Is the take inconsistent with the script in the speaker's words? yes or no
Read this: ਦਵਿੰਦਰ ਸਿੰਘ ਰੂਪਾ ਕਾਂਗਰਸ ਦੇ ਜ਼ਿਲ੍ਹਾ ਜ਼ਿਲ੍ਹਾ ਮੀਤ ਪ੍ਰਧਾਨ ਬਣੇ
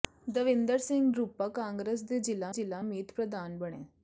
no